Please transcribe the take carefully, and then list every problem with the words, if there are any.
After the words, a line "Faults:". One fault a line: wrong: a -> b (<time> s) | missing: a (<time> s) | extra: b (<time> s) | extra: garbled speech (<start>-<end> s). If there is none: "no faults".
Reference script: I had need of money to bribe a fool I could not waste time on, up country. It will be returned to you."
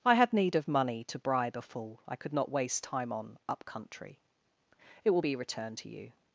I had need of money to bribe a fool I could not waste time on, up country. It will be returned to you."
Faults:
no faults